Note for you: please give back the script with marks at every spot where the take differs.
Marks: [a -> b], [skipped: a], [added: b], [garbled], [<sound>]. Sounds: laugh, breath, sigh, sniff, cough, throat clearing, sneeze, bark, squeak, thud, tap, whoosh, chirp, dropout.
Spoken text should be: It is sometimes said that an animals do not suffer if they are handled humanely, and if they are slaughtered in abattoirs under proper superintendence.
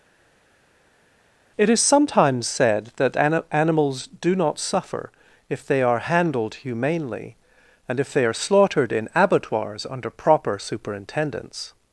It is sometimes said that an animals do not suffer if they are handled humanely, and if they are slaughtered in abattoirs under proper superintendence.